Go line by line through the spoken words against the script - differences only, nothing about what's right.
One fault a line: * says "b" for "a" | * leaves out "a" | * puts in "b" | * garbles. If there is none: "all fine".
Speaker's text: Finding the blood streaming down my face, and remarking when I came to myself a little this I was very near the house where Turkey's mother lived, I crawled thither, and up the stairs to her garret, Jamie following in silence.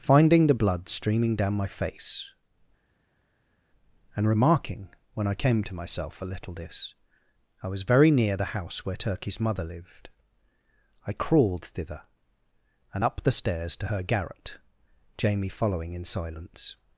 all fine